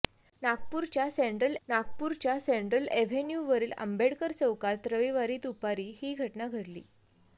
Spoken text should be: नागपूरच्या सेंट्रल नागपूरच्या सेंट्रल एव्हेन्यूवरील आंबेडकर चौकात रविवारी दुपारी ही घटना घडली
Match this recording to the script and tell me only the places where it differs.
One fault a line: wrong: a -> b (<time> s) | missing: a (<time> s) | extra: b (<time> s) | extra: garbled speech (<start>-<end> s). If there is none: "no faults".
no faults